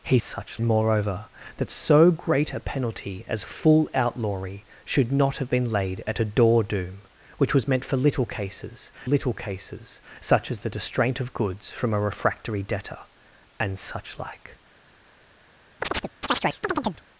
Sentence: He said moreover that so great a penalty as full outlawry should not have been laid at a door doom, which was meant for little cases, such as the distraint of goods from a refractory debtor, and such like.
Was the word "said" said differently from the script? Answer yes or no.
yes